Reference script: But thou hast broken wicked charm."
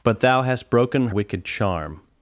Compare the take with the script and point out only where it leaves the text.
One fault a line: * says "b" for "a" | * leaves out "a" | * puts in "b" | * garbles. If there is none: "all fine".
all fine